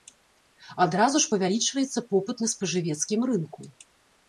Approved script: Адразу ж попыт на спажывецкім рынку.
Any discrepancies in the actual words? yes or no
yes